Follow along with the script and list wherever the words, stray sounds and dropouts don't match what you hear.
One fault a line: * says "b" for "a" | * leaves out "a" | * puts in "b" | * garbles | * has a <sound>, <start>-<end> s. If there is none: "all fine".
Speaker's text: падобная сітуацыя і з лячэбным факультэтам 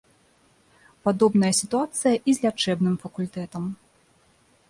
all fine